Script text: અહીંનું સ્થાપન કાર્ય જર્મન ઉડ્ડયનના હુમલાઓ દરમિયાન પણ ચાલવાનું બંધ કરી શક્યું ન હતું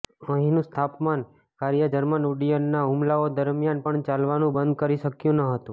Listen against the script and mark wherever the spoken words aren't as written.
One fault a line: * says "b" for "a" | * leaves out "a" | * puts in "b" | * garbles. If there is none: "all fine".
all fine